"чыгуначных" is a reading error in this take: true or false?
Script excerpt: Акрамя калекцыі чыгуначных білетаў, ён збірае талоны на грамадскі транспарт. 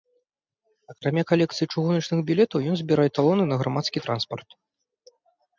false